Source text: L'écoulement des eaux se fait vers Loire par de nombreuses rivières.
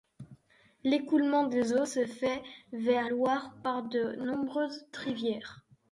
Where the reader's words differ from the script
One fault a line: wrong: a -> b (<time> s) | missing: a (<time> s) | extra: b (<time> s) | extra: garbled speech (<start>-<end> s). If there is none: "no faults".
no faults